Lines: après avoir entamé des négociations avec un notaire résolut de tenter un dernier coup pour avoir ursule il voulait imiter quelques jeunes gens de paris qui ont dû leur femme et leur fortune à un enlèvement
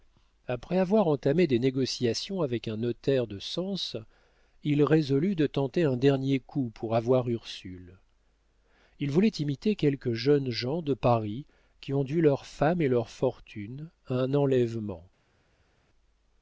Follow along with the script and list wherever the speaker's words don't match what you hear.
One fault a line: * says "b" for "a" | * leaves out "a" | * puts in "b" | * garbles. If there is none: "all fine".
* puts in "de sens il"